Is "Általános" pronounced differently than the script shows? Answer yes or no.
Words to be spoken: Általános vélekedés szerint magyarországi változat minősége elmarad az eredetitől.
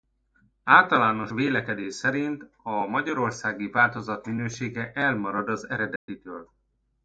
no